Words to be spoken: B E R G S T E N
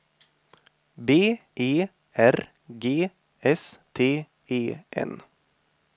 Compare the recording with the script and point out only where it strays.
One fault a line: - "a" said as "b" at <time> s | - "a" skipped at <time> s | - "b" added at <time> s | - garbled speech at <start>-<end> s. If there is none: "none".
none